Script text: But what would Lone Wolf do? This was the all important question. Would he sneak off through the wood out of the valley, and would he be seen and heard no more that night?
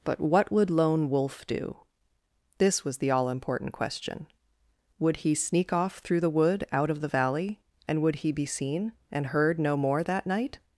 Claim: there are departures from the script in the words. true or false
false